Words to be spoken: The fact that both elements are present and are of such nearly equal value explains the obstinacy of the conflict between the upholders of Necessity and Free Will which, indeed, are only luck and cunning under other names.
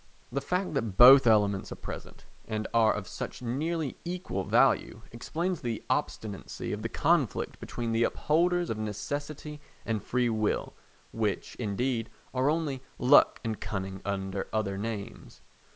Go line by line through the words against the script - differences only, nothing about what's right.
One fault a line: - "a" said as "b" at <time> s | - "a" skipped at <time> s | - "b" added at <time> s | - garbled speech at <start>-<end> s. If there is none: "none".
none